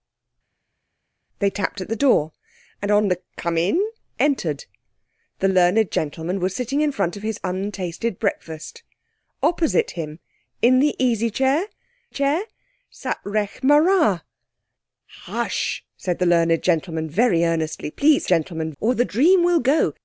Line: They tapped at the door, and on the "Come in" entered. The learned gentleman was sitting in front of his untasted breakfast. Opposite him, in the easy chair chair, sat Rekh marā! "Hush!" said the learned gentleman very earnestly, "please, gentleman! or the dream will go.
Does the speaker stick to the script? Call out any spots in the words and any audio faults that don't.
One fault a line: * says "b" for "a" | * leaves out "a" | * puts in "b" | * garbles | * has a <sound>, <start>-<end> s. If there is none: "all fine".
all fine